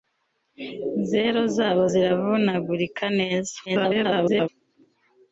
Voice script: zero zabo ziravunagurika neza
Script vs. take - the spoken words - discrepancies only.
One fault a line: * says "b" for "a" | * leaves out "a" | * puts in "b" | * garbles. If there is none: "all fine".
* garbles